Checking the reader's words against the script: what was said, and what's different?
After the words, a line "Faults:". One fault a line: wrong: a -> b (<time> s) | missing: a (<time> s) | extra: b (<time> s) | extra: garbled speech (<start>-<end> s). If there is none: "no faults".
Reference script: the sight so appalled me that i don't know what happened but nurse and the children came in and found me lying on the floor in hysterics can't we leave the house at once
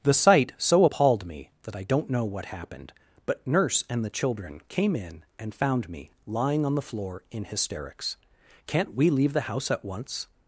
the sight so appalled me that i don't know what happened but nurse and the children came in and found me lying on the floor in hysterics can't we leave the house at once
Faults:
no faults